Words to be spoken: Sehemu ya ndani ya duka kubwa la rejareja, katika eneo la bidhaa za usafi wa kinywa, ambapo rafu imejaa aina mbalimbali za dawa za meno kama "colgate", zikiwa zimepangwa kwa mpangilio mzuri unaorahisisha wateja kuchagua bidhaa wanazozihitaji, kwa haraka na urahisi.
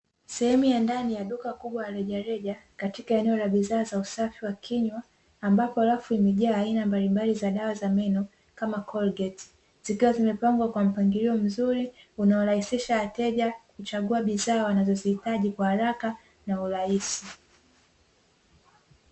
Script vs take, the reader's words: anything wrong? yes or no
no